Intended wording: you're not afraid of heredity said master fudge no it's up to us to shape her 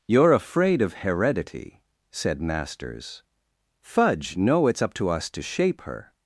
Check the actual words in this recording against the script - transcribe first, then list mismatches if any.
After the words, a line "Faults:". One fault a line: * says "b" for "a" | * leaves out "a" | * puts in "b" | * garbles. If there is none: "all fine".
you're afraid of heredity said masters fudge no it's up to us to shape her
Faults:
* leaves out "not"
* says "masters" for "master"